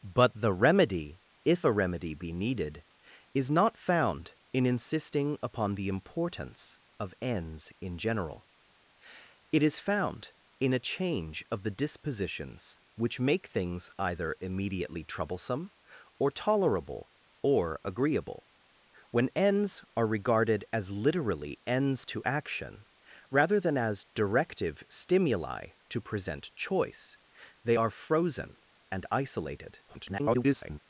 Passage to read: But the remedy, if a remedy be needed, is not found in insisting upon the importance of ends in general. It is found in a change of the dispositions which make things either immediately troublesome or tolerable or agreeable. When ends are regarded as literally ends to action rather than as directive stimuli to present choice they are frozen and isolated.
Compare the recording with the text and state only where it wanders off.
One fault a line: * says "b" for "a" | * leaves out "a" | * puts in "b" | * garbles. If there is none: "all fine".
* garbles